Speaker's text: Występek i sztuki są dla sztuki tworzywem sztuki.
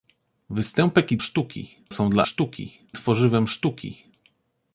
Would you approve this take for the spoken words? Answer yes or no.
yes